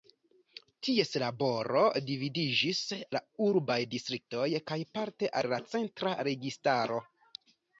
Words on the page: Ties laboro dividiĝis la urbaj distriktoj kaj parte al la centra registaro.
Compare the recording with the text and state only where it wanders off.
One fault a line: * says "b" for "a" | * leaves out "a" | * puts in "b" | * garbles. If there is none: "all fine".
all fine